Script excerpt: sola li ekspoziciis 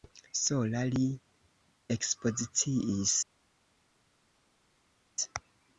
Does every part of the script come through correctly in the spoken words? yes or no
yes